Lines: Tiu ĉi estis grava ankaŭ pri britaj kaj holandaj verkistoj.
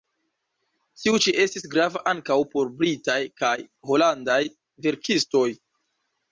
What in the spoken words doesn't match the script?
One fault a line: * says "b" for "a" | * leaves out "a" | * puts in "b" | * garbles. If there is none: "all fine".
* says "por" for "pri"